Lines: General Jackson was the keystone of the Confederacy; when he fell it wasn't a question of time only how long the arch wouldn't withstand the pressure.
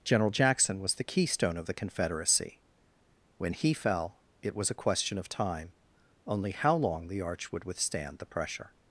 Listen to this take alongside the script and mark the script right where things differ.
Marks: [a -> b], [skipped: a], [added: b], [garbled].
General Jackson was the keystone of the Confederacy; when he fell it [wasn't -> was] a question of time only how long the arch [wouldn't -> would] withstand the pressure.